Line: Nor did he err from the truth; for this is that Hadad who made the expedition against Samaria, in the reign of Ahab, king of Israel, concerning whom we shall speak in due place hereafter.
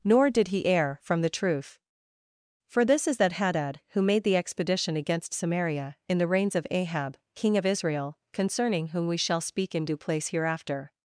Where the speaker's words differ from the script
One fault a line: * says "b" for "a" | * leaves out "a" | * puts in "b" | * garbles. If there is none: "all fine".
* says "reigns" for "reign"